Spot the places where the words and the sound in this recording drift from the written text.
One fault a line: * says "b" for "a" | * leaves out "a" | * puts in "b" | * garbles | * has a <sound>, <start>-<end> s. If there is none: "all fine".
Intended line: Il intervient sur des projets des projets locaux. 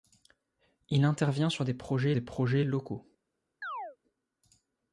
* has a chirp, 3.6-4.0 s